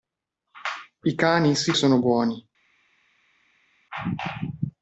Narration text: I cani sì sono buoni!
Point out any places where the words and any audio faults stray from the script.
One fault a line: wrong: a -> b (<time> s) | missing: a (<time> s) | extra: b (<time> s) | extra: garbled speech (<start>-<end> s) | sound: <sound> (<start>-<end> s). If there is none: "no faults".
no faults